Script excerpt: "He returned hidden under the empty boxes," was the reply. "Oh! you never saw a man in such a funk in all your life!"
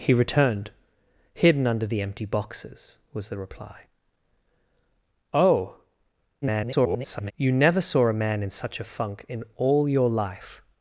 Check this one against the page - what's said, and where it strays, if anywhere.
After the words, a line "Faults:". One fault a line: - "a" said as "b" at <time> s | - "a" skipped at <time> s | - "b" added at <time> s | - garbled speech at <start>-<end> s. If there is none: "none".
"He returned hidden under the empty boxes," was the reply. "Oh! [garbled] you never saw a man in such a funk in all your life!"
Faults:
- garbled speech at 6.4-7.3 s